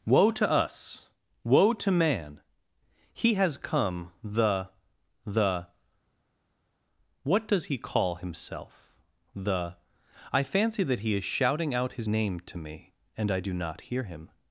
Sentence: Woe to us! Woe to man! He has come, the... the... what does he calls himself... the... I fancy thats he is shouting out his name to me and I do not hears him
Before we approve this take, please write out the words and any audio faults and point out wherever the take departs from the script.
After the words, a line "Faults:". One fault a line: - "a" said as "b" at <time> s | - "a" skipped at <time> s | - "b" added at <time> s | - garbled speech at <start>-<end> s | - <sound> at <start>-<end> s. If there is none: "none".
Woe to us! Woe to man! He has come, the... the... what does he call himself... the... I fancy that he is shouting out his name to me and I do not hear him
Faults:
- "calls" said as "call" at 7.8 s
- "thats" said as "that" at 10.8 s
- "hears" said as "hear" at 13.9 s